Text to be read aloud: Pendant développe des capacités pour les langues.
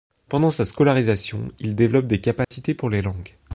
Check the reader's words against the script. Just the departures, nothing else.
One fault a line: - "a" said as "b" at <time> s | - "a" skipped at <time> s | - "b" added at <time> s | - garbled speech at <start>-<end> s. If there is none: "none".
- "sa scolarisation il" added at 0.5 s